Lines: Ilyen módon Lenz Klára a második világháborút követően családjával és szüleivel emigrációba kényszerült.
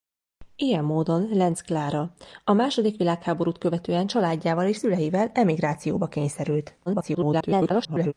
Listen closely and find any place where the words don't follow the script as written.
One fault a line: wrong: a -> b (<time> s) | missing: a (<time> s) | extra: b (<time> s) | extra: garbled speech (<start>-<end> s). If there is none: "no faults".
extra: garbled speech (6.9-8.1 s)